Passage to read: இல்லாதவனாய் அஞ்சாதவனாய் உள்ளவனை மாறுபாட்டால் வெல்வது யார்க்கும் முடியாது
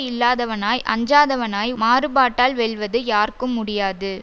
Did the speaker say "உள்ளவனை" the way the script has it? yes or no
no